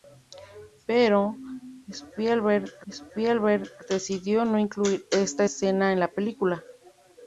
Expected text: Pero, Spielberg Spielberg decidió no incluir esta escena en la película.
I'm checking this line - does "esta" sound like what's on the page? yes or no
yes